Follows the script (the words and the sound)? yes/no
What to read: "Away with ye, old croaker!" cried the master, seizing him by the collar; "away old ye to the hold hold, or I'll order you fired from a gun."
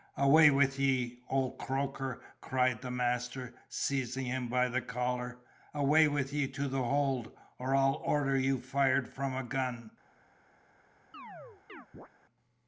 no